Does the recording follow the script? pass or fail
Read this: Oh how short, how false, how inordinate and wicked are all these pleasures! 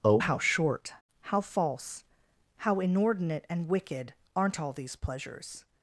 fail